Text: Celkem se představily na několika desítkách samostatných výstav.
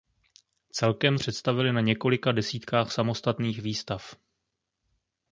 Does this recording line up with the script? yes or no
no